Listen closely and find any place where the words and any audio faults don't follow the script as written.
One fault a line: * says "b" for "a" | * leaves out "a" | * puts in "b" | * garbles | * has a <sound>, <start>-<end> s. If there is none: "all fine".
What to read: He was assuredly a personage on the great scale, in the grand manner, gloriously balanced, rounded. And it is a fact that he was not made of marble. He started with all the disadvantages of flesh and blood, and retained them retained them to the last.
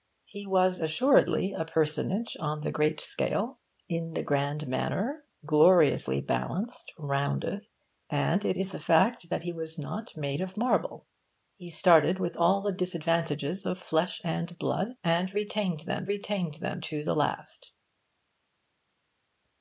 all fine